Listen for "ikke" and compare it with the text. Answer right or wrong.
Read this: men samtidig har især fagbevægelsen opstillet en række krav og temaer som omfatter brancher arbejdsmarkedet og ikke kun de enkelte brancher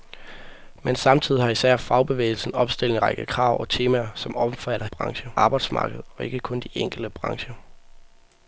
right